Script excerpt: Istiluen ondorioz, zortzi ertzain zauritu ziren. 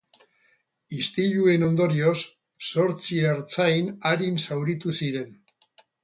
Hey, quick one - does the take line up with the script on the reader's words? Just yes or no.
no